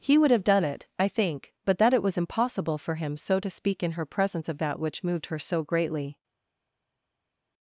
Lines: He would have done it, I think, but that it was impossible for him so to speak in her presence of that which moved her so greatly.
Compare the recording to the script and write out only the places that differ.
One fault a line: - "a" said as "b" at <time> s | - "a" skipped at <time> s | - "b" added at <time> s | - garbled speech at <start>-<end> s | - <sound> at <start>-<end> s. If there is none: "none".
none